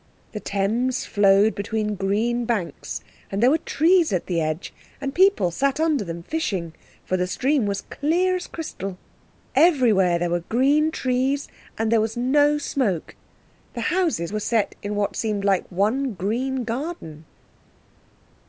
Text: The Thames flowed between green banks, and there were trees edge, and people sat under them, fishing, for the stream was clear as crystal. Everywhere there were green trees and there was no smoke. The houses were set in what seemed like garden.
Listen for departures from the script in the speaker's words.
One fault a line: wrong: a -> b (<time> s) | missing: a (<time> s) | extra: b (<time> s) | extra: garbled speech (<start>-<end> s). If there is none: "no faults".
extra: at the (4.1 s)
extra: one green (15.7 s)